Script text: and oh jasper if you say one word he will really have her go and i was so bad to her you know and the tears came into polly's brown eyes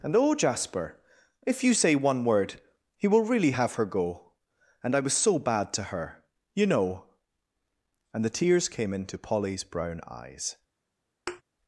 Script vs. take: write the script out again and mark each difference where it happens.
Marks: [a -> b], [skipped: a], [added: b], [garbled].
and oh jasper if you say one word he will really have her go and i was so bad to her you know and the tears came into polly's brown eyes